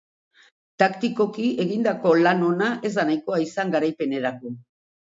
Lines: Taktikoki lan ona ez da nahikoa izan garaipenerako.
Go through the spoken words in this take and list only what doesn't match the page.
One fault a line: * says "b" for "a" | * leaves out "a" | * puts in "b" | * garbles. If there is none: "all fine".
* puts in "egindako"